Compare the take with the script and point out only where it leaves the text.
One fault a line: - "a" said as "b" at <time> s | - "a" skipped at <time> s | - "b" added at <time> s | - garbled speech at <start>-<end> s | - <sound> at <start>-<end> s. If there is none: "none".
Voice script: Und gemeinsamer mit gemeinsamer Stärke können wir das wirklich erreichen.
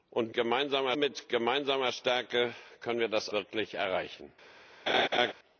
- laugh at 4.9-5.3 s